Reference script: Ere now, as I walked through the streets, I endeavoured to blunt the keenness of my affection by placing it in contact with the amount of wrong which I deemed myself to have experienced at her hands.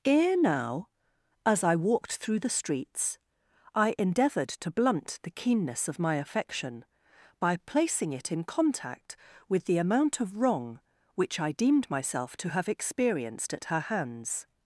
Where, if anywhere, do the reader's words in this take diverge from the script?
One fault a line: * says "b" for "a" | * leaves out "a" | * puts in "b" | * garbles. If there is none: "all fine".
all fine